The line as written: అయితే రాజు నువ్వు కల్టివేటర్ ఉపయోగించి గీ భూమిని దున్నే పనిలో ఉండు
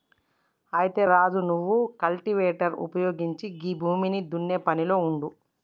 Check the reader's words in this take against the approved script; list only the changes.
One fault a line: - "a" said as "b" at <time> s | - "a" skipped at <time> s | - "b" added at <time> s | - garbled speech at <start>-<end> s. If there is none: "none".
none